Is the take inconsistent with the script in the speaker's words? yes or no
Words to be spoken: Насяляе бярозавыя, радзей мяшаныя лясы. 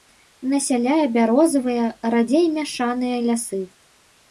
no